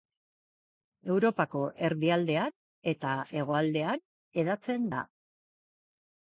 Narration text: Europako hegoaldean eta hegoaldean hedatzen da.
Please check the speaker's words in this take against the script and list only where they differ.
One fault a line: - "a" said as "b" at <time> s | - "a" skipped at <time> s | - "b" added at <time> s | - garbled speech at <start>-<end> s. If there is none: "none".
- "hegoaldean" said as "erdialdean" at 1.9 s